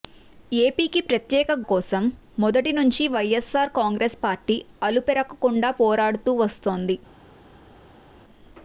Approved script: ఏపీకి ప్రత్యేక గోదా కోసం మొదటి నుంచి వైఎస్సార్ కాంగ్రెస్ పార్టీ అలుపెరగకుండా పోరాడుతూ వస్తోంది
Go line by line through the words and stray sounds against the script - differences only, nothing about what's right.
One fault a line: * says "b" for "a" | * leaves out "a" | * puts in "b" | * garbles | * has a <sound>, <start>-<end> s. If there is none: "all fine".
* leaves out "గోదా"